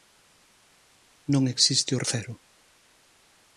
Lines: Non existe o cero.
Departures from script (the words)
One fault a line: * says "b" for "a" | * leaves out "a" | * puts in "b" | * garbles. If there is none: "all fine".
all fine